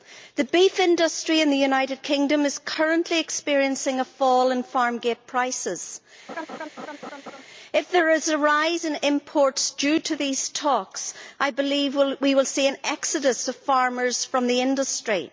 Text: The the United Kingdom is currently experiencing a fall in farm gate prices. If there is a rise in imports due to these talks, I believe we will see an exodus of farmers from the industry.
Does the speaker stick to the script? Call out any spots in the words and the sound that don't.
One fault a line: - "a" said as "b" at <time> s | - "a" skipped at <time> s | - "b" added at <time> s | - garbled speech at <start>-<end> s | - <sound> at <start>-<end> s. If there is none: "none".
- "beef industry in" added at 0.5 s
- laugh at 6.3-7.4 s